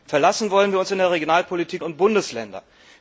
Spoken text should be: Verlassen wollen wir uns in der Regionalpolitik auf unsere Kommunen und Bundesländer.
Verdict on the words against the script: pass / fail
fail